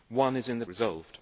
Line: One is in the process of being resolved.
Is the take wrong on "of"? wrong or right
wrong